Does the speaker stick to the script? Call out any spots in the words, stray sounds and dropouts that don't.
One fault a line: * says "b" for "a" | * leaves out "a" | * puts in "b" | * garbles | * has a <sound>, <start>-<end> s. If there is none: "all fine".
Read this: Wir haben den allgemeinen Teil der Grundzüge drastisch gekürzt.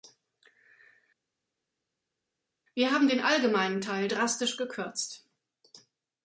* leaves out "der Grundzüge"